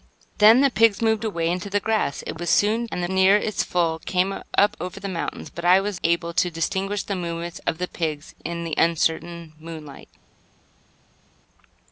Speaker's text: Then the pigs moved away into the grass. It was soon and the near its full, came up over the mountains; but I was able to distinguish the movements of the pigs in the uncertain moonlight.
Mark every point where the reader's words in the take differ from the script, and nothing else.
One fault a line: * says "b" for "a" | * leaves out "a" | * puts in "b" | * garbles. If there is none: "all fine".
all fine